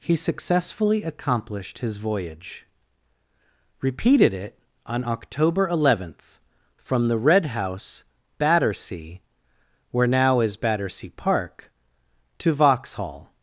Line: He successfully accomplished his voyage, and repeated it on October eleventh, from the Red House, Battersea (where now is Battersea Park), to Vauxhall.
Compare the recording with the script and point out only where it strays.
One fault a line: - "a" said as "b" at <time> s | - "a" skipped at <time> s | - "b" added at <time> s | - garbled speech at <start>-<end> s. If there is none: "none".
- "and" skipped at 2.6 s